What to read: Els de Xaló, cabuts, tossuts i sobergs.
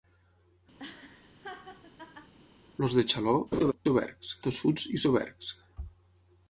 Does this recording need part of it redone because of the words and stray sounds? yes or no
yes